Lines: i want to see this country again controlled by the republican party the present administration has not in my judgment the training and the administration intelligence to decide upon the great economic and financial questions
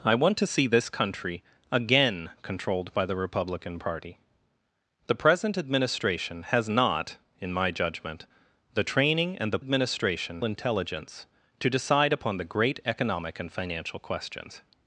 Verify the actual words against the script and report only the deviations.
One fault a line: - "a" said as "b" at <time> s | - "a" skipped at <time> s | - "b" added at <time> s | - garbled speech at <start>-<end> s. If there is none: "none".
none